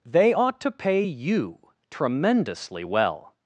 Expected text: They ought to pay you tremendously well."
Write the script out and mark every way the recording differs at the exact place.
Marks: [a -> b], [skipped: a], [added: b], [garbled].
They ought to pay you tremendously well."